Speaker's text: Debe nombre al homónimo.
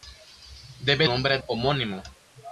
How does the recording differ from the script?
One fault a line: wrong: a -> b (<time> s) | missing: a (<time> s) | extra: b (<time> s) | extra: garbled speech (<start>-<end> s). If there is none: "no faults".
no faults